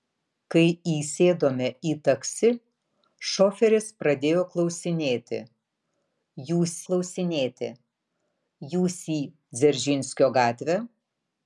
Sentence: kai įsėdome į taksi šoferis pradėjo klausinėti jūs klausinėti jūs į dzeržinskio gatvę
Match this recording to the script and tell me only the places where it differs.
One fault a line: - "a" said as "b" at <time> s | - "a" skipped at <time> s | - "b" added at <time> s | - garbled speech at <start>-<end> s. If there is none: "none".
none